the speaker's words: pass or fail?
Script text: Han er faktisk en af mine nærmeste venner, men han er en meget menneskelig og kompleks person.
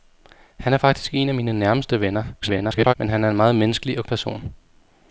fail